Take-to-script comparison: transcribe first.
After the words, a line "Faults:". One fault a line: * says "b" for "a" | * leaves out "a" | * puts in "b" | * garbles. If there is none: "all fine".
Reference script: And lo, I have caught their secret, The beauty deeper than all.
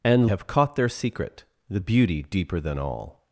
And have caught their secret, The beauty deeper than all.
Faults:
* leaves out "lo I"